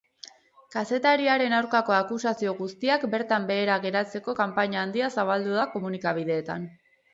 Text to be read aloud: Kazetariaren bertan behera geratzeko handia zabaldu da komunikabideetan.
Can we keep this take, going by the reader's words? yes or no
no